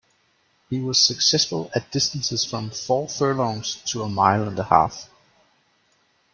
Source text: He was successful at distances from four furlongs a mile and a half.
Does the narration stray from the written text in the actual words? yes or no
yes